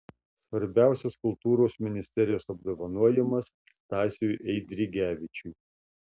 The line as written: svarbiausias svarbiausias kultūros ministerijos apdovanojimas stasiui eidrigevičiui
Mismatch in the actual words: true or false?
true